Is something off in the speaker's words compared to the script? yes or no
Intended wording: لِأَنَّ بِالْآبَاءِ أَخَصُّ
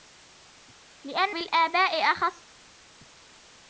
no